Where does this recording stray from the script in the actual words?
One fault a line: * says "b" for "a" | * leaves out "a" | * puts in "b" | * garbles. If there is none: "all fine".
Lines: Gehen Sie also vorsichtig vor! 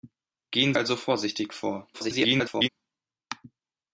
* leaves out "Sie"
* garbles